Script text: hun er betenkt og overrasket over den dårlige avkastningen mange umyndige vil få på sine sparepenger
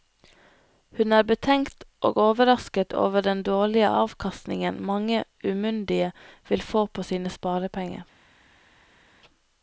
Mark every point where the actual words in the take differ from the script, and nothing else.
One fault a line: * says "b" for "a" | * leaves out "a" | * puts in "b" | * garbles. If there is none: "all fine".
all fine